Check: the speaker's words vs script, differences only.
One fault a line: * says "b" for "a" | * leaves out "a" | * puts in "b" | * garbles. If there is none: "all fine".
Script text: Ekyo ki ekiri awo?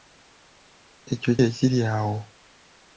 * leaves out "ki"